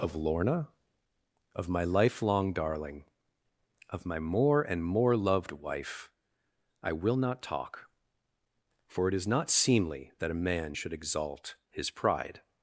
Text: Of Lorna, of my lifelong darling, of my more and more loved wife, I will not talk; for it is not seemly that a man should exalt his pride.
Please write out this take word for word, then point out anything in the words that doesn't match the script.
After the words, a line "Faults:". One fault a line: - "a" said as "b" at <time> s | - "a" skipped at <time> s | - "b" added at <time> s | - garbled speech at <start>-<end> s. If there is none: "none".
Of Lorna, of my lifelong darling, of my more and more loved wife, I will not talk; for it is not seemly that a man should exalt his pride.
Faults:
none